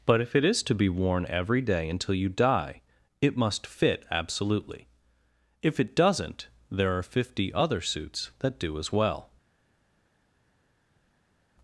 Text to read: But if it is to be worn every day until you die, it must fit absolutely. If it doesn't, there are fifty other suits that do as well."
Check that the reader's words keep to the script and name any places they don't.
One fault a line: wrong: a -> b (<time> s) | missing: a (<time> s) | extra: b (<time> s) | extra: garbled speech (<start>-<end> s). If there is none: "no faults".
no faults